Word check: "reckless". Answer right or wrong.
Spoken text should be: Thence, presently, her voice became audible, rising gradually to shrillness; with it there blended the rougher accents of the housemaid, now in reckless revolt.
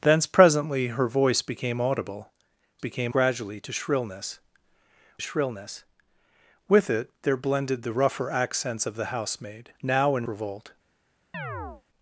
wrong